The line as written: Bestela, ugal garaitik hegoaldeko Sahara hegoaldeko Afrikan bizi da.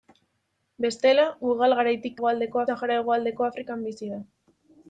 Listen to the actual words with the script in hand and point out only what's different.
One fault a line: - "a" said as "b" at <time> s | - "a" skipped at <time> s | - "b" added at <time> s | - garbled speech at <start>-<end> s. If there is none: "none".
none